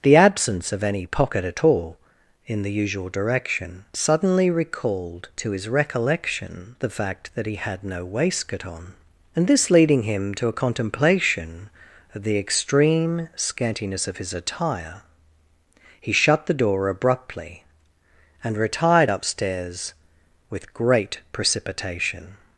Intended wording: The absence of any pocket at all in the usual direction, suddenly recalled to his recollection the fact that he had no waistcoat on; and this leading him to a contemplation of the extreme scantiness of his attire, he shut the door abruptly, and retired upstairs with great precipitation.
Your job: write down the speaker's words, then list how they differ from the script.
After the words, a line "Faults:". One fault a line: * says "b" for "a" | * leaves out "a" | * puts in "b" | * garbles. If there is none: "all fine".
The absence of any pocket at all in the usual direction, suddenly recalled to his recollection the fact that he had no waistcoat on; and this leading him to a contemplation of the extreme scantiness of his attire, he shut the door abruptly, and retired upstairs with great precipitation.
Faults:
all fine